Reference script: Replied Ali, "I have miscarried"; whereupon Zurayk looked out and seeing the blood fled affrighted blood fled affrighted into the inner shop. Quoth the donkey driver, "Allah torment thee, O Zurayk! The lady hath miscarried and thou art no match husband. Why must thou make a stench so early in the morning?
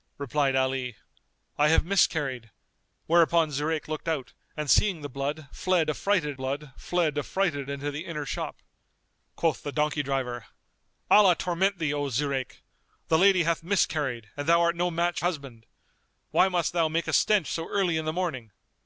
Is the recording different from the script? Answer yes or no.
no